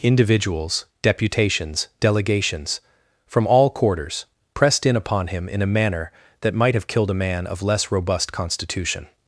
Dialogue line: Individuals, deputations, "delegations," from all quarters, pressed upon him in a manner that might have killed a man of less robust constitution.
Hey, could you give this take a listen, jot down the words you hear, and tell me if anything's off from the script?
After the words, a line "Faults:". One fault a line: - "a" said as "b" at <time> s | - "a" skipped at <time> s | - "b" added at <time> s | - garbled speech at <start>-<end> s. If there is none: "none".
Individuals, deputations, "delegations," from all quarters, pressed in upon him in a manner that might have killed a man of less robust constitution.
Faults:
- "in" added at 4.8 s